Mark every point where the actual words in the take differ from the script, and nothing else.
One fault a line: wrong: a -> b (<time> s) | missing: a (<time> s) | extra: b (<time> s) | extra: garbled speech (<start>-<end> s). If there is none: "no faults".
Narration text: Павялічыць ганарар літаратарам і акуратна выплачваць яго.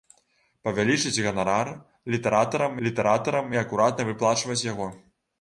extra: літаратарам (2.9 s)